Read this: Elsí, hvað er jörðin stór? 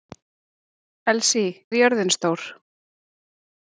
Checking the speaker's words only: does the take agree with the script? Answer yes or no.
no